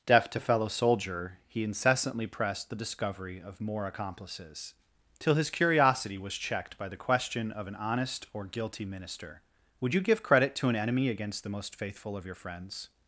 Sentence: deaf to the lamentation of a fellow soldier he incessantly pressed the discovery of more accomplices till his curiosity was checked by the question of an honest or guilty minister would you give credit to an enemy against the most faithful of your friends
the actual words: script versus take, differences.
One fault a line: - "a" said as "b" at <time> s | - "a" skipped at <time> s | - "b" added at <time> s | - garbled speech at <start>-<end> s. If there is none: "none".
- "the lamentation of a" skipped at 0.4 s